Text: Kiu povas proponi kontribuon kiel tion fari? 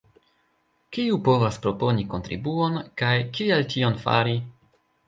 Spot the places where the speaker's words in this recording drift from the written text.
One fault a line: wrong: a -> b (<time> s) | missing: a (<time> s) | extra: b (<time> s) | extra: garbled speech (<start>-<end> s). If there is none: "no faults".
extra: kaj (3.0 s)